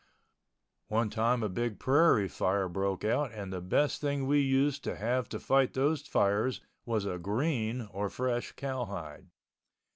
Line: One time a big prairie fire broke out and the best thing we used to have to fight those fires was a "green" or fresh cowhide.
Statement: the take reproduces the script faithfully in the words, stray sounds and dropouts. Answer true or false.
true